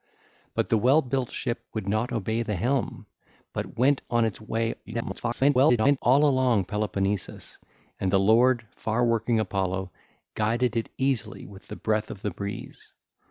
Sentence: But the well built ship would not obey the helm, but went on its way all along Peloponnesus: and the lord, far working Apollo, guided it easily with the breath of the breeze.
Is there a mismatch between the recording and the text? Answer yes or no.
yes